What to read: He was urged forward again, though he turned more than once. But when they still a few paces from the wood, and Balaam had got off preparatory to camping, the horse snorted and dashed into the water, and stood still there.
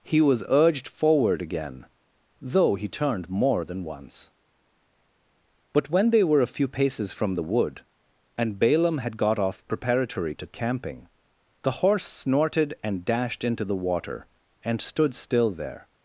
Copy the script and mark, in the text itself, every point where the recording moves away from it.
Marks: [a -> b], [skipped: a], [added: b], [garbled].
He was urged forward again, though he turned more than once. But when they [still -> were] a few paces from the wood, and Balaam had got off preparatory to camping, the horse snorted and dashed into the water, and stood still there.